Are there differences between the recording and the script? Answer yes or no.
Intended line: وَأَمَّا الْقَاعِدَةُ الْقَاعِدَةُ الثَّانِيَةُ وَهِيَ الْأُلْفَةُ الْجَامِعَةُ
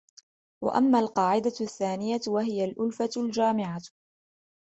yes